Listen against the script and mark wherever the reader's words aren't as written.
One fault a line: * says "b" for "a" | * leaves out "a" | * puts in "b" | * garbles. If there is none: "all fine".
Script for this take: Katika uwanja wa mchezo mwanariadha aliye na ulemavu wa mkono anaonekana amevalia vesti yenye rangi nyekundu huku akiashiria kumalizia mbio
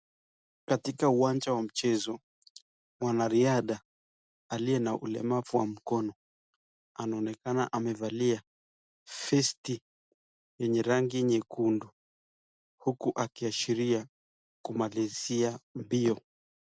all fine